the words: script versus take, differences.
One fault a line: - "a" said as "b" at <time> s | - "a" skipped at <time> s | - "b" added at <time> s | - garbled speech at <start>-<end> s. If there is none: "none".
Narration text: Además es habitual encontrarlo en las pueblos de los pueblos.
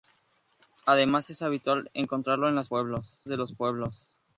none